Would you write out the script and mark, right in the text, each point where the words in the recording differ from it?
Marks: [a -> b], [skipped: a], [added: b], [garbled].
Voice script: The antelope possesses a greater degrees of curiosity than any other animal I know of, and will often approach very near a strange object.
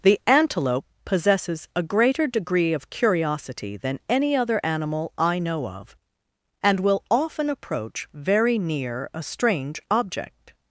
The antelope possesses a greater [degrees -> degree] of curiosity than any other animal I know of, and will often approach very near a strange object.